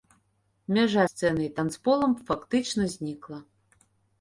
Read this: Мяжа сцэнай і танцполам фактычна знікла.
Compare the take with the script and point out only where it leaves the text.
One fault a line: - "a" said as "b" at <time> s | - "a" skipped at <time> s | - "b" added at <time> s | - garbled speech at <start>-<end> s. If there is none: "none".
none